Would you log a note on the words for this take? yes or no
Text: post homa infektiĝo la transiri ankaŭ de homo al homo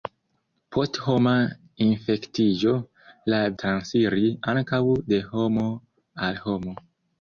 no